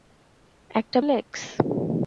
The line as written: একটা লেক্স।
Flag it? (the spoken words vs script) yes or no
no